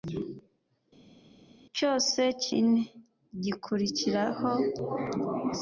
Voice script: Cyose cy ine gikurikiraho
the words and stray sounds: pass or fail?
pass